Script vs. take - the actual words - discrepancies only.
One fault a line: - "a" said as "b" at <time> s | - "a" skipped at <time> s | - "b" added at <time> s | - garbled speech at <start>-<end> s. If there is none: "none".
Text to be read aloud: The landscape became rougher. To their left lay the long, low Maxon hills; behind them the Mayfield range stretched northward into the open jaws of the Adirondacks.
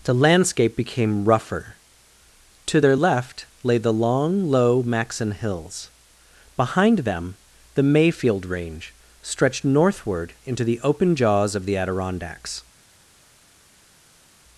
none